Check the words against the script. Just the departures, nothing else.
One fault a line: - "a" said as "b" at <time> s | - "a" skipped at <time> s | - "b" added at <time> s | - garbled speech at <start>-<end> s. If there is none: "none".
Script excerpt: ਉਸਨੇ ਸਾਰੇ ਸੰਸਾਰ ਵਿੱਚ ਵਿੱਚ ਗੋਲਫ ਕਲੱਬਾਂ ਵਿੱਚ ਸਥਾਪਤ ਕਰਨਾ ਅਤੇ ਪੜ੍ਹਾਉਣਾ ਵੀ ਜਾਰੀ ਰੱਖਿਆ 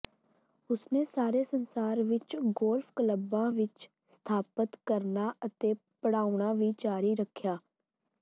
- "ਵਿੱਚ" skipped at 2.4 s